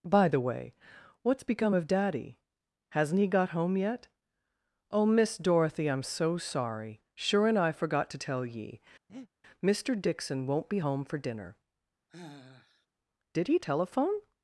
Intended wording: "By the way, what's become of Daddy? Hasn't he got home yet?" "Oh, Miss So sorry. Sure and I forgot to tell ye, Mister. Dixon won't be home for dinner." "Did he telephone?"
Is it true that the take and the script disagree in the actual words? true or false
true